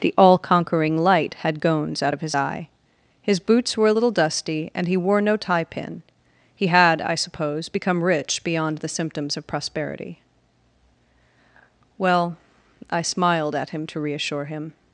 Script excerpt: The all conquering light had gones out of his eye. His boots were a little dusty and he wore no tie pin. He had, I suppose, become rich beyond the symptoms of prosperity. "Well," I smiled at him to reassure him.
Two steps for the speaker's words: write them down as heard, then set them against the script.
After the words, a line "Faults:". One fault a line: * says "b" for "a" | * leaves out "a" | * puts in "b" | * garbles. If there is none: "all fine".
The all conquering light had gones out of his eye. His boots were a little dusty and he wore no tie pin. He had, I suppose, become rich beyond the symptoms of prosperity. "Well," I smiled at him to reassure him.
Faults:
all fine